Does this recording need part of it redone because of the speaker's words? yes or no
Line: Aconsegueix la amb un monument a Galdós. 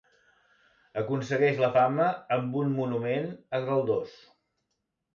yes